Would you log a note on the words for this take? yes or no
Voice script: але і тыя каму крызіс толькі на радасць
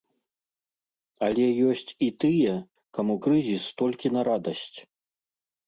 yes